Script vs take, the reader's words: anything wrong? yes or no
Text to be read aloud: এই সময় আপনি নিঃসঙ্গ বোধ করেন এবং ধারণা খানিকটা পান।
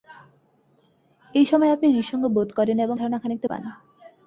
no